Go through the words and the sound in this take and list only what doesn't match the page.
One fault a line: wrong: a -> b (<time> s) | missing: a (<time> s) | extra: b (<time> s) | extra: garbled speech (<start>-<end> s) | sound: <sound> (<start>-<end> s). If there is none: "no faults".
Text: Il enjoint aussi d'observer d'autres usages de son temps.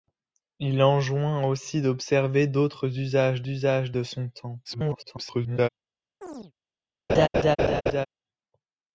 extra: usages (3.5 s)
extra: garbled speech (4.6-5.7 s)
sound: chirp (6.2-6.5 s)
sound: laugh (7.1-8.1 s)